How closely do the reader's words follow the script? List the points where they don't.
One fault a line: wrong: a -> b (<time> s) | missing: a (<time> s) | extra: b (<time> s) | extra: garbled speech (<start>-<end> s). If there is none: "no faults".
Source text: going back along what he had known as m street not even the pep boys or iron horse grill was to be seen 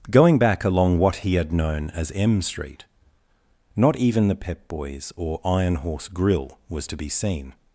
no faults